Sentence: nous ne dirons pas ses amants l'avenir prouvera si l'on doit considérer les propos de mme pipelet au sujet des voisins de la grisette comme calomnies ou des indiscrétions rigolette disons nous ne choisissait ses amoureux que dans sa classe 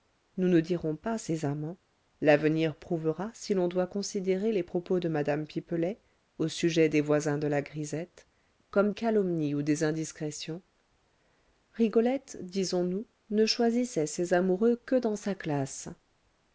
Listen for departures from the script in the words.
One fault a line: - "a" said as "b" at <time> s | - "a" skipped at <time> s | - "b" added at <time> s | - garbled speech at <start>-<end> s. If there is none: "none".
none